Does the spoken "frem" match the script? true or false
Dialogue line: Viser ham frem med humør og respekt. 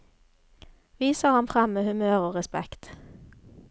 true